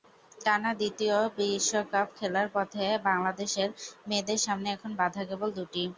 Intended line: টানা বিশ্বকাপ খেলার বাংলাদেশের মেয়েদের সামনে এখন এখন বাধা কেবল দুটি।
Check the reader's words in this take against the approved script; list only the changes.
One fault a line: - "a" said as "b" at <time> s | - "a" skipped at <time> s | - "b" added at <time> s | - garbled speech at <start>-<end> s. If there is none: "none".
- "দ্বিতীয়" added at 0.7 s
- "পথে" added at 2.5 s
- "এখন" skipped at 4.9 s